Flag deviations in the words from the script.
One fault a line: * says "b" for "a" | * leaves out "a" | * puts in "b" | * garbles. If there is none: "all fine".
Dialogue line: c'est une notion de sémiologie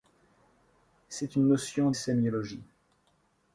* leaves out "de"